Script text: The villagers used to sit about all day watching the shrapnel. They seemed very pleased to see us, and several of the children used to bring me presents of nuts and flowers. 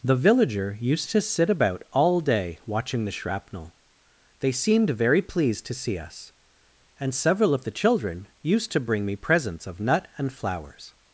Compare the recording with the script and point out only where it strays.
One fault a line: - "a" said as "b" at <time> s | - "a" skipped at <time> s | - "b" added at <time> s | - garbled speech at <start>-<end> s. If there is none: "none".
- "villagers" said as "villager" at 0.1 s
- "nuts" said as "nut" at 9.8 s